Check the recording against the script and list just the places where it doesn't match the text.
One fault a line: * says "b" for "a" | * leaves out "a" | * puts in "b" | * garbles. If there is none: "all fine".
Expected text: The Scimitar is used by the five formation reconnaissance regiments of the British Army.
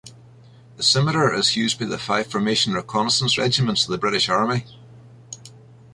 all fine